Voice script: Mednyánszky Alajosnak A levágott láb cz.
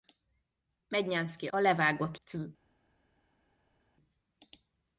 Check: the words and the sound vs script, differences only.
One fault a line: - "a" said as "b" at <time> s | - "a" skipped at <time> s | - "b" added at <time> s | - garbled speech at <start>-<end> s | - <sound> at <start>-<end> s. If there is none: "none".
- "Alajosnak" skipped at 1.5 s
- "láb" skipped at 2.2 s